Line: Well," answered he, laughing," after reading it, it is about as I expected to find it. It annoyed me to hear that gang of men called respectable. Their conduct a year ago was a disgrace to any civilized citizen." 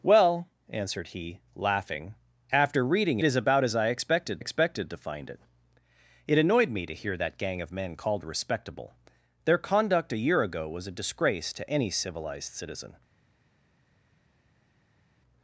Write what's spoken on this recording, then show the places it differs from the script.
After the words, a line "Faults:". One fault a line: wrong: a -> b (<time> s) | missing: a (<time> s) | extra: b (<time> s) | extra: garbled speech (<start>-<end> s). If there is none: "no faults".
Well," answered he, laughing," after reading is about as I expected expected to find it. It annoyed me to hear that gang of men called respectable. Their conduct a year ago was a disgrace to any civilized citizen."
Faults:
missing: it it (3.2 s)
extra: expected (4.4 s)